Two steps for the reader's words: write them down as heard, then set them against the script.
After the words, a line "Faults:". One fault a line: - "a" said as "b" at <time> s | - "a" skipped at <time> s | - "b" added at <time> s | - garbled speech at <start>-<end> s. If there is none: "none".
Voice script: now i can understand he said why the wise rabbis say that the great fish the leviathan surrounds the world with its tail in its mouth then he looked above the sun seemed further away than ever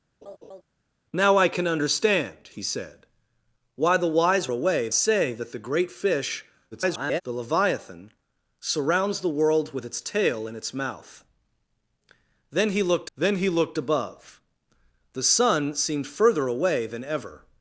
now i can understand he said why the wise away say that the great fish [garbled] the leviathan surrounds the world with its tail in its mouth then he looked then he looked above the sun seemed further away than ever
Faults:
- "rabbis" said as "away" at 4.5 s
- garbled speech at 6.7-7.2 s
- "then he looked" added at 13.2 s